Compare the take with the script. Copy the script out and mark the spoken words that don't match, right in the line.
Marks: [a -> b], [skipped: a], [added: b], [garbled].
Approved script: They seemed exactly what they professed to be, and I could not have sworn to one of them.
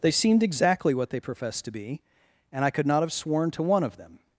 They seemed exactly what they professed to be, and I could not have sworn to one of them.